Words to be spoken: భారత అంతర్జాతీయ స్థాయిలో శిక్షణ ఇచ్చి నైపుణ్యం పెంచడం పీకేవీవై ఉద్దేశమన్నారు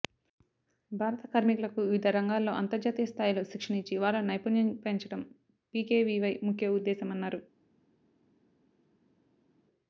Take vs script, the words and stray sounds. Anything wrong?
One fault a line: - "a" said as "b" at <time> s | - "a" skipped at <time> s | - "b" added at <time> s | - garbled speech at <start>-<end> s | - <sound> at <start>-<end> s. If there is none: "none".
- "కార్మికులకు వివిధ రంగాల్లో" added at 1.3 s
- "వారిలో" added at 4.0 s
- "ముఖ్య" added at 6.5 s